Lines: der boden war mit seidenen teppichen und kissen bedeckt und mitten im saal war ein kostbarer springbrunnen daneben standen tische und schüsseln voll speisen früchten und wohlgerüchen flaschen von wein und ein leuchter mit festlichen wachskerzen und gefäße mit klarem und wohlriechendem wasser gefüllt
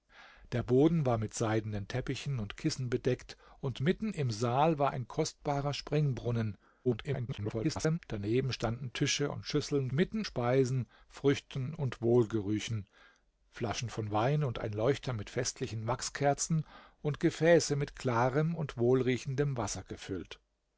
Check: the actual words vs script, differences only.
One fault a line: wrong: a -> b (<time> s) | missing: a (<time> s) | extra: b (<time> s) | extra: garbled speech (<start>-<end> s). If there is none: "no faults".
extra: garbled speech (6.8-8.0 s)
wrong: voll -> mitten (9.9 s)